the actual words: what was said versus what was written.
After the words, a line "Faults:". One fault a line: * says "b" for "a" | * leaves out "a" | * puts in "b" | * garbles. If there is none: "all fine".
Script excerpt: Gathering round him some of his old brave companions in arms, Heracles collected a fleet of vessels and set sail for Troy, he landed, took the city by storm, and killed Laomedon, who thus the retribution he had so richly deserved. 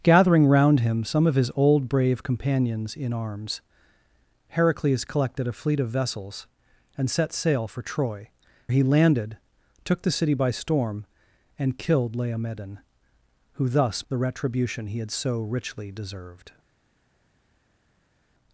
Gathering round him some of his old brave companions in arms, Heracles collected a fleet of vessels and set sail for Troy, he landed, took the city by storm, and killed Laomedon, who thus the retribution he had so richly deserved.
Faults:
all fine